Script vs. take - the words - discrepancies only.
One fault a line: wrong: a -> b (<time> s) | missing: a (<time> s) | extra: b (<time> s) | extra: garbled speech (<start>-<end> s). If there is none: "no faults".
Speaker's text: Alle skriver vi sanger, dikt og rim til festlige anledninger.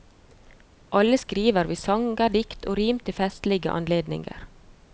no faults